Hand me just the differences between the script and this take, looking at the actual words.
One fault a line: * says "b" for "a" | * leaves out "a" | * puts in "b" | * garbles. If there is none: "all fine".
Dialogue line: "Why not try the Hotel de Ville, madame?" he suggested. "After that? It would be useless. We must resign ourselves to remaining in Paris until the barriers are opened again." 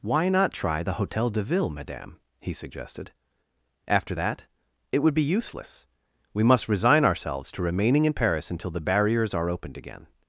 all fine